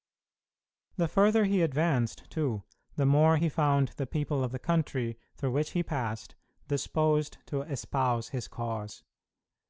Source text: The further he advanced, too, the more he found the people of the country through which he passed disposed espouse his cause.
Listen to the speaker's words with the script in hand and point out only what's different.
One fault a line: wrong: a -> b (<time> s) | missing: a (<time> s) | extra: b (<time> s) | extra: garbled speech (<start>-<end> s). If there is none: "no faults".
extra: to (7.5 s)